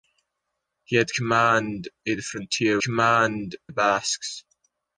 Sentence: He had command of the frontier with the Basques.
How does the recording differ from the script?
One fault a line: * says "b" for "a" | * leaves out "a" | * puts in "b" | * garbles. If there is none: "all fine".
* says "command" for "with"